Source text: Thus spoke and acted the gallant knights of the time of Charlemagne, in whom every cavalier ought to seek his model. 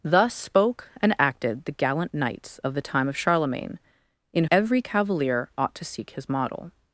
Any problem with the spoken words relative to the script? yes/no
yes